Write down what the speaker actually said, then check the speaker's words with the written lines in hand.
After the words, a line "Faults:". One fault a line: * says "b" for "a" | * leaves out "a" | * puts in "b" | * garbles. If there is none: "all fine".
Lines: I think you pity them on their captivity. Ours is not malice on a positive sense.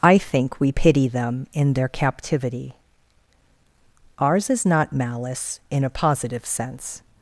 I think we pity them in their captivity. Ours is not malice in a positive sense.
Faults:
* says "we" for "you"
* says "in" for "on"
* says "in" for "on"